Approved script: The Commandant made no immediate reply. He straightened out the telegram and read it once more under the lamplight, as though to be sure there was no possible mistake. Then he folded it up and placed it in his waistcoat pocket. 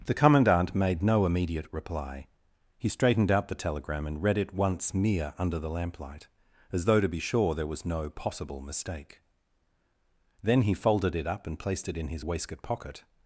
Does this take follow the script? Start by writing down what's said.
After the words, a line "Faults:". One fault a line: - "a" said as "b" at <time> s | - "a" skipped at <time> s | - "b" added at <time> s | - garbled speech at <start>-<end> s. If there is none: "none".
The Commandant made no immediate reply. He straightened out the telegram and read it once mere under the lamplight, as though to be sure there was no possible mistake. Then he folded it up and placed it in his waistcoat pocket.
Faults:
- "more" said as "mere" at 4.9 s